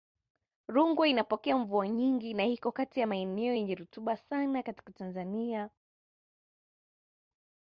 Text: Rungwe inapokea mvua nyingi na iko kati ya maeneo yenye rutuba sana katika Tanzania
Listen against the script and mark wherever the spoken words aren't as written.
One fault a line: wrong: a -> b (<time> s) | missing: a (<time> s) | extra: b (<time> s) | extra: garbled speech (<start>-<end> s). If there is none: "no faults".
no faults